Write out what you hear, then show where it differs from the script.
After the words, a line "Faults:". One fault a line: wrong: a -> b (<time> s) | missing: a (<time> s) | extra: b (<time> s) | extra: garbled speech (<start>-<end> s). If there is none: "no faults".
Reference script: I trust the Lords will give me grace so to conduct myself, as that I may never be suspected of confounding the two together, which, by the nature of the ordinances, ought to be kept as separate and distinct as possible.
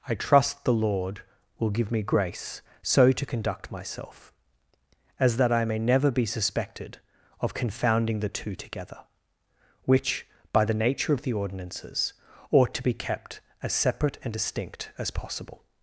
I trust the Lord will give me grace so to conduct myself, as that I may never be suspected of confounding the two together, which, by the nature of the ordinances, ought to be kept as separate and distinct as possible.
Faults:
wrong: Lords -> Lord (0.7 s)